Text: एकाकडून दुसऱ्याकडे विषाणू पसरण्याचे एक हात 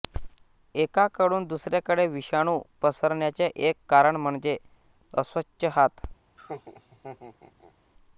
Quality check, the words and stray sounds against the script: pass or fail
fail